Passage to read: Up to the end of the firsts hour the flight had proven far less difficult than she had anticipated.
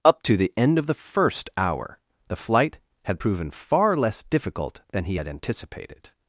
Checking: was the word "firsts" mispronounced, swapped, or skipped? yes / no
yes